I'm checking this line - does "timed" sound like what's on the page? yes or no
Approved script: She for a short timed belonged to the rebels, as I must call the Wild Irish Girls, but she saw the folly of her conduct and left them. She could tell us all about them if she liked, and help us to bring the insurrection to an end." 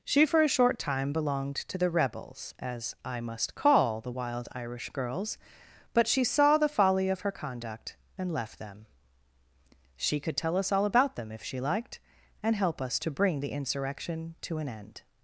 no